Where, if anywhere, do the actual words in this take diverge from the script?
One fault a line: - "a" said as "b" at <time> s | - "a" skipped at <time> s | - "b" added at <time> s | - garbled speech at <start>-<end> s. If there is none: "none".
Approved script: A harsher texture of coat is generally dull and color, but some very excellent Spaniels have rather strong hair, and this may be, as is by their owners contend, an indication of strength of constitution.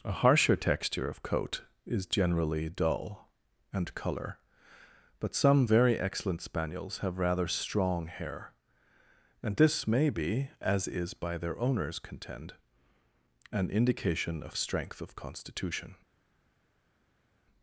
none